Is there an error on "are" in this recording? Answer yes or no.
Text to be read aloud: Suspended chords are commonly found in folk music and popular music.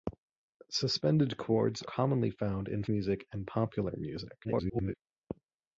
yes